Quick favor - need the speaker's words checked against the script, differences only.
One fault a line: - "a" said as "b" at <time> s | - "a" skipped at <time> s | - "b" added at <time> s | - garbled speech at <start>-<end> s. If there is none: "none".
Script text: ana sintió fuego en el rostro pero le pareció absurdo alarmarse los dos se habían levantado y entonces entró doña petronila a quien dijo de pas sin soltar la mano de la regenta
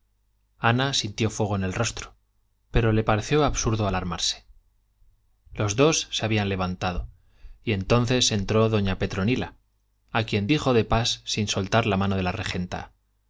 none